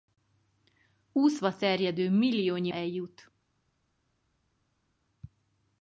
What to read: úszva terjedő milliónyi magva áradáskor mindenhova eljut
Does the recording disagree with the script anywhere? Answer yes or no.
yes